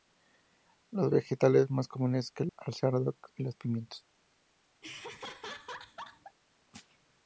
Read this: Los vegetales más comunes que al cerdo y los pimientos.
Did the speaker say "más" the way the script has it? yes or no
yes